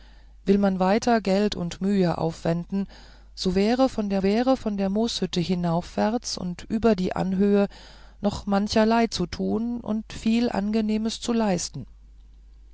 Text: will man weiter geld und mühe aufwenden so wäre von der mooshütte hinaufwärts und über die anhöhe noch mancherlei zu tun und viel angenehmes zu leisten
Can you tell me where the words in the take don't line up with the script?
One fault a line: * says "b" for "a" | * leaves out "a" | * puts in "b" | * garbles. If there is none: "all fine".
* puts in "wäre von der"